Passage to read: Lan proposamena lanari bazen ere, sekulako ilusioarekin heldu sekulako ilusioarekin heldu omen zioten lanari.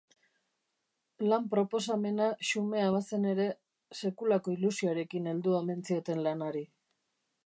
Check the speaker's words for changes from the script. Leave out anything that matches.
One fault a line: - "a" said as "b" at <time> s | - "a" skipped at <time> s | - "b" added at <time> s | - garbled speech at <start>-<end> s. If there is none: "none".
- "lanari" said as "xumea" at 2.5 s
- "sekulako ilusioarekin heldu" skipped at 5.6 s